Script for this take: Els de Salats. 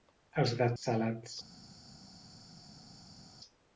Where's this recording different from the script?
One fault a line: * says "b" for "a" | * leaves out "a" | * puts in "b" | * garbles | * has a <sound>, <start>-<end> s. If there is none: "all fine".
all fine